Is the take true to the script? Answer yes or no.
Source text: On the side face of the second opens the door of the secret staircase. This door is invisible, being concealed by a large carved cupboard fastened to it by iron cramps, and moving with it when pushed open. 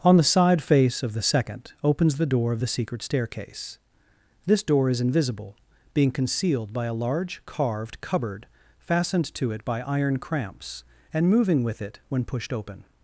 yes